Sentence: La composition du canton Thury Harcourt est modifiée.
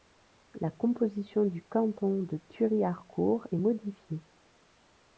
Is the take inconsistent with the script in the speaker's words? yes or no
yes